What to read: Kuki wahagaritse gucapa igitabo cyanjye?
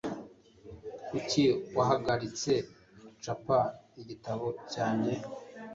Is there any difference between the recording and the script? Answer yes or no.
no